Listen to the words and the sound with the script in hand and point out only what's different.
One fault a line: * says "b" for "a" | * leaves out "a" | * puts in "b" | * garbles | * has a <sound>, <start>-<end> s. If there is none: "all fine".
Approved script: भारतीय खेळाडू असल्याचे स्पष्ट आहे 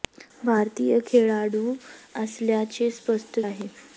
all fine